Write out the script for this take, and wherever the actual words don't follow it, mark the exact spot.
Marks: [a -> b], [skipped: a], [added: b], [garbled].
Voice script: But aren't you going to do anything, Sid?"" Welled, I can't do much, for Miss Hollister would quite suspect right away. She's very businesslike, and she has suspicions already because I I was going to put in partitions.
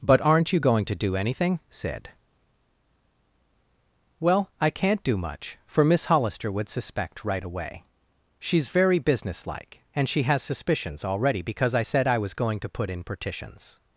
But aren't you going to do anything, Sid?"" [Welled, -> Well] I can't do much, for Miss Hollister would [skipped: quite] suspect right away. She's very businesslike, and she has suspicions already because I [added: said] I was going to put in partitions.